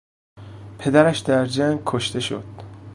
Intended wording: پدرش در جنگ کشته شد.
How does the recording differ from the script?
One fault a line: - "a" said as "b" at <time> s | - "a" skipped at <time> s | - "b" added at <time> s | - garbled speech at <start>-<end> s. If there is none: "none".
none